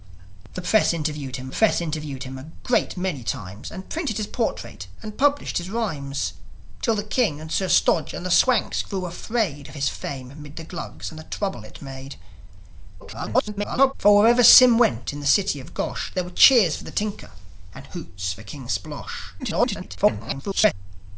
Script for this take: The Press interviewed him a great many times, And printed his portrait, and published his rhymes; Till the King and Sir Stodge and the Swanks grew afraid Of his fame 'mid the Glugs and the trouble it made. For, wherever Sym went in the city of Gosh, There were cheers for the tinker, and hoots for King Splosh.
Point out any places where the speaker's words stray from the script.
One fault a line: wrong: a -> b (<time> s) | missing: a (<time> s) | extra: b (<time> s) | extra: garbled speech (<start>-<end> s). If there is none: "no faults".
extra: Press interviewed him (1.5 s)
extra: garbled speech (13.0-13.9 s)
extra: garbled speech (19.4-20.7 s)